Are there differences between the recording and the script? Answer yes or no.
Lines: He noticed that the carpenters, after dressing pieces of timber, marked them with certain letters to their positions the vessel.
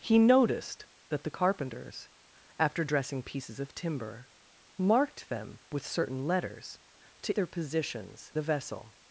no